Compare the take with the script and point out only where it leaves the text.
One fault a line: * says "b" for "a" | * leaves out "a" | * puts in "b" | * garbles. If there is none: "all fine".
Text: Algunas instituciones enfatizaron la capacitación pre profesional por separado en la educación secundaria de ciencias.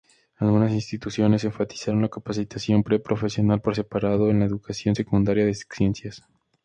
all fine